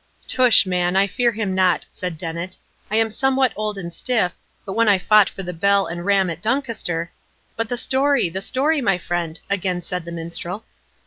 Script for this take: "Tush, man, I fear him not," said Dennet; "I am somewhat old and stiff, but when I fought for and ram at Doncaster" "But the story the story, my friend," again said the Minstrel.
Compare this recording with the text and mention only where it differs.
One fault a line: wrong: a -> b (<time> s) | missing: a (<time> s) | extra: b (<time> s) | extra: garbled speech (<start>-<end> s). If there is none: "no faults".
extra: the bell (5.4 s)